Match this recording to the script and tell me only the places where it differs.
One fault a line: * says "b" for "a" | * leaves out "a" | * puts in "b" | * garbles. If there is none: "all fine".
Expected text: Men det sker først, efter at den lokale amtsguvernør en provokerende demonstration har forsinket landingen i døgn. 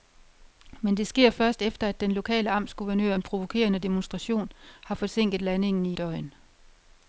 all fine